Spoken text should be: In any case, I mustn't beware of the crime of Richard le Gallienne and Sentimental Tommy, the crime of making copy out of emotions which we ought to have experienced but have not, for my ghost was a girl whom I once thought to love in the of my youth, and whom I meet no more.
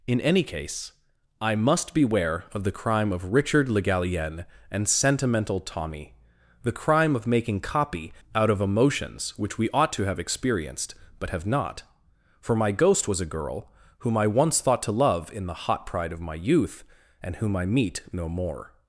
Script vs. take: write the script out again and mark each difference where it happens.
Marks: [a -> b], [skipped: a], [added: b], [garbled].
In any case, I [mustn't -> must] beware of the crime of Richard le Gallienne and Sentimental Tommy, the crime of making copy out of emotions which we ought to have experienced but have not, for my ghost was a girl whom I once thought to love in the [added: hot pride] of my youth, and whom I meet no more.